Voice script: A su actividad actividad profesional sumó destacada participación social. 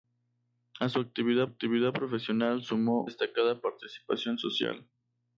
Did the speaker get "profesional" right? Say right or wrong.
right